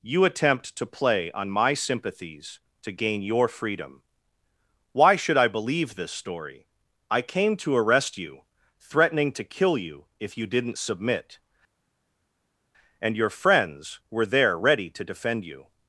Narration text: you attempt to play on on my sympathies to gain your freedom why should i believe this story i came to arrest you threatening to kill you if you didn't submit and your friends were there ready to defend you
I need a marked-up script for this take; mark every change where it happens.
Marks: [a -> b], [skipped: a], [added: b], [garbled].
you attempt to play on [skipped: on] my sympathies to gain your freedom why should i believe this story i came to arrest you threatening to kill you if you didn't submit and your friends were there ready to defend you